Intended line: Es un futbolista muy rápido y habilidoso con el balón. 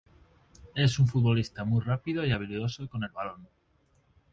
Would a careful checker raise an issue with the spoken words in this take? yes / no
no